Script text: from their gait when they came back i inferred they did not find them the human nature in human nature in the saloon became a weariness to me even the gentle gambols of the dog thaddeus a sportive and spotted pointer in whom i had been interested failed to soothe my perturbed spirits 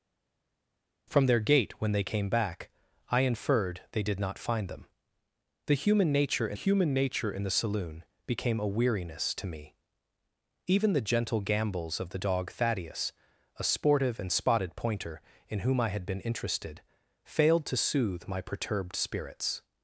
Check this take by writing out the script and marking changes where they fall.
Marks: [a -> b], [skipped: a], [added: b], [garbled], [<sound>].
from their gait when they came back i inferred they did not find them the human nature in human nature in the saloon became a weariness to me even the gentle gambols of the dog thaddeus a sportive and spotted pointer in whom i had been interested failed to soothe my perturbed spirits